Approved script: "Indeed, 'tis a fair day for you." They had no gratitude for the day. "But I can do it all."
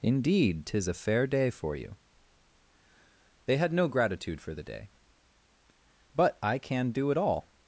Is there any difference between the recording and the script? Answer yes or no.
no